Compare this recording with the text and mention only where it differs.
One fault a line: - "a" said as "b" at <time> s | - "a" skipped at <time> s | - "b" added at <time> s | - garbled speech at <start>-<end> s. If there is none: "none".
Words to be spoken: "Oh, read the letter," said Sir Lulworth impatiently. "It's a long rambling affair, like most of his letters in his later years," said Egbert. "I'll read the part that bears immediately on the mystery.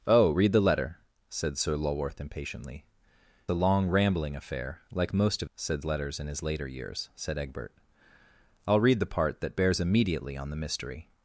- "It's" skipped at 2.9 s
- "his" said as "said" at 5.6 s